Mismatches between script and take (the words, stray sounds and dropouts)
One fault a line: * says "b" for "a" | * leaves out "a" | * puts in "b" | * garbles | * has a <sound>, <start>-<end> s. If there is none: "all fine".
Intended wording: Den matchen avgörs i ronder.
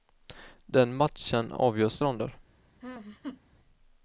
* has a laugh, 2.8-3.4 s